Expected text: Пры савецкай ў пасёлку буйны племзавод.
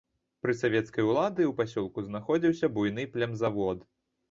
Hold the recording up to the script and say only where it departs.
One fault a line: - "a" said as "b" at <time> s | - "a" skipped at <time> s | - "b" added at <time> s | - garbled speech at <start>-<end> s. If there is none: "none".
- "улады" added at 1.1 s
- "знаходзіўся" added at 2.1 s